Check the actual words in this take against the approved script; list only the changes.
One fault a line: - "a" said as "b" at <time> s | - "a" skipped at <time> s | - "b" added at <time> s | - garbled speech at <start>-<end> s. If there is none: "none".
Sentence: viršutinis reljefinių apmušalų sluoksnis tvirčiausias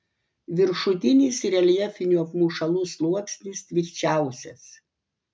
none